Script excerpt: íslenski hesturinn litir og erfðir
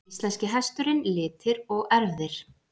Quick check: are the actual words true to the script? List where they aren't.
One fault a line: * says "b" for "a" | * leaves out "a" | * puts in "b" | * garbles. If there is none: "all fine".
all fine